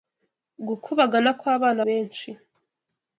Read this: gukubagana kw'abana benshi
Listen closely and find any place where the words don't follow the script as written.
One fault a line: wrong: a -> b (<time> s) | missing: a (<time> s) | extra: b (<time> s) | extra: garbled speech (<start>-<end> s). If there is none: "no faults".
no faults